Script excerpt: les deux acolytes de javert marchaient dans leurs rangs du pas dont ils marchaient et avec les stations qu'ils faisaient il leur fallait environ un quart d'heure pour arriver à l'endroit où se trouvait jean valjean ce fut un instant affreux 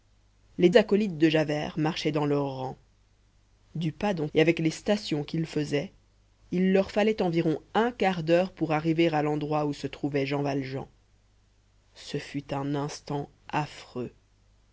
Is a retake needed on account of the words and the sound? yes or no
yes